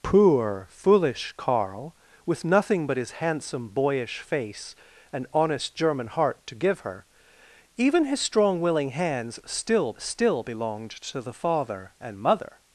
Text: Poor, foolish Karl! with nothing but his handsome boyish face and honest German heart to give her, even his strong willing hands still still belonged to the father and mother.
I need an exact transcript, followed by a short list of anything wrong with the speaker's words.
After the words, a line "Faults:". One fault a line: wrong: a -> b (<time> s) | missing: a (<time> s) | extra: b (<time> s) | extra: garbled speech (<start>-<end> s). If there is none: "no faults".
Poor, foolish Karl! with nothing but his handsome boyish face and honest German heart to give her, even his strong willing hands still still belonged to the father and mother.
Faults:
no faults